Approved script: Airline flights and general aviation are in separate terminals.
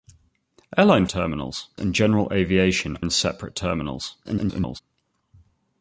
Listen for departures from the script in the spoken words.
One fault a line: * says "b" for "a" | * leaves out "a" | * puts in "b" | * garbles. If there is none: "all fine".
* says "terminals" for "flights"
* leaves out "are"
* garbles